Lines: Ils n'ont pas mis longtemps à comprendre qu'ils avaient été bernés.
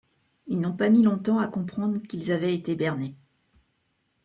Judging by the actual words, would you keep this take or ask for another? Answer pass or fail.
pass